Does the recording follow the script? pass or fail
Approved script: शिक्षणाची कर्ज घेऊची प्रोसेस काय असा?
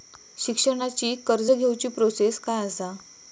pass